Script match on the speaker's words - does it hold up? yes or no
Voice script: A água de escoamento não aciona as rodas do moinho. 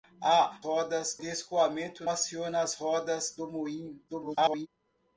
no